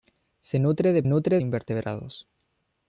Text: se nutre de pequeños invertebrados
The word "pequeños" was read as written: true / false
false